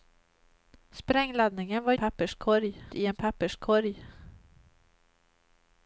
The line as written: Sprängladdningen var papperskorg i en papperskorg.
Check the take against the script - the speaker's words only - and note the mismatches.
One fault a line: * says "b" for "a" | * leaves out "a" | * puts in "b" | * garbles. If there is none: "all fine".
all fine